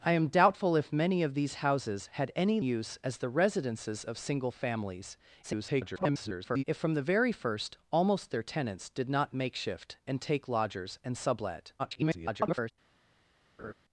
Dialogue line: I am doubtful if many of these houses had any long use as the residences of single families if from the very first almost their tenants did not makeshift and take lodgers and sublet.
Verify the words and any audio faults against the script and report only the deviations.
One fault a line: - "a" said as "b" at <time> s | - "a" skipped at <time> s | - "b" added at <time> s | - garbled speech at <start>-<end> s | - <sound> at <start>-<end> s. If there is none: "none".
- "long" skipped at 2.6 s
- garbled speech at 5.4-6.6 s
- garbled speech at 11.8-12.7 s
- laugh at 13.6-13.7 s